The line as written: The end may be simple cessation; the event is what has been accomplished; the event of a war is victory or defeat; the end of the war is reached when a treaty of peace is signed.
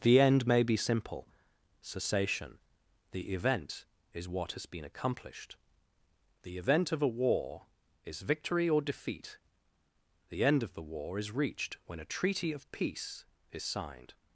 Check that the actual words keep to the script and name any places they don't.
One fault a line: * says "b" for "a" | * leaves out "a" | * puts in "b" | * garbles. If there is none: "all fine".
all fine